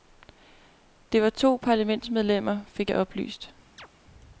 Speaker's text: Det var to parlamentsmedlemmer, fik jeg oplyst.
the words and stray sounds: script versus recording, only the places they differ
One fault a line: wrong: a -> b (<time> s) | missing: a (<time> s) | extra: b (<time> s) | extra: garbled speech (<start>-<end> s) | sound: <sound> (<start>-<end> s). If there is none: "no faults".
sound: chirp (3.8-3.9 s)